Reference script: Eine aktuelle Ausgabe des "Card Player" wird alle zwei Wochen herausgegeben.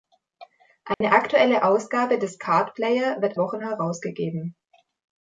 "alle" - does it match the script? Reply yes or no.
no